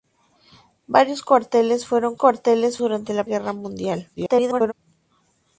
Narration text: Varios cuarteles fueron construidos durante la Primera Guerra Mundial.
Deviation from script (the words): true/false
true